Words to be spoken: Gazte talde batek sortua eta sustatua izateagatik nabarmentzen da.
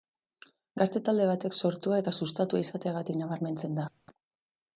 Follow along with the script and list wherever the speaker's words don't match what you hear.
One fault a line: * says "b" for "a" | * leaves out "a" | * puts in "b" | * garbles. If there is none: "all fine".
all fine